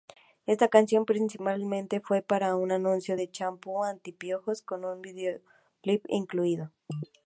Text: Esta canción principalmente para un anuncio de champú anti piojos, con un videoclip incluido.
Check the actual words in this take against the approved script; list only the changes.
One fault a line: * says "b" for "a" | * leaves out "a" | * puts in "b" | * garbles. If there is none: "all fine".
* puts in "fue"